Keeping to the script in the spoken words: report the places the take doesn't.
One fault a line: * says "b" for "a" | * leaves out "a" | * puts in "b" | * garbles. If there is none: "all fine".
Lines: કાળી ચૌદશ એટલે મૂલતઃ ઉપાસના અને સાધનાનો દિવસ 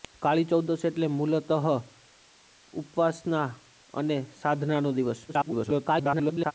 * garbles